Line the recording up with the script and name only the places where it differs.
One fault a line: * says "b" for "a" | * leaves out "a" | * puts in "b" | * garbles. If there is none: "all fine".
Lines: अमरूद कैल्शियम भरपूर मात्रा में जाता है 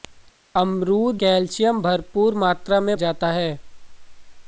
all fine